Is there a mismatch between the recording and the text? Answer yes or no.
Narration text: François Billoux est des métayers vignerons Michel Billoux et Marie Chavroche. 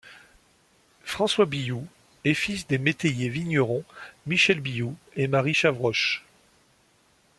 yes